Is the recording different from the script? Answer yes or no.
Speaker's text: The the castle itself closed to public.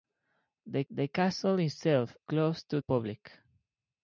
no